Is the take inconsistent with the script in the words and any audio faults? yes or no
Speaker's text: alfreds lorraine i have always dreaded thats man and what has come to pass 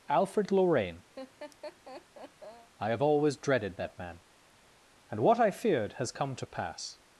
yes